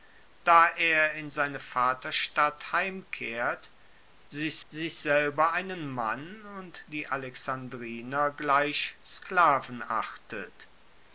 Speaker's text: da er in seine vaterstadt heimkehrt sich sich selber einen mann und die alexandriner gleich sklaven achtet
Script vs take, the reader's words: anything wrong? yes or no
no